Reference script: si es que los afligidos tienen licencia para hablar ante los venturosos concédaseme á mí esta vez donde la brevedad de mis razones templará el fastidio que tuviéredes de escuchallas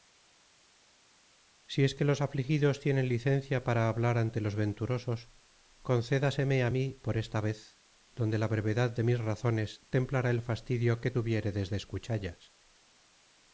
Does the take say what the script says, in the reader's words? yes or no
no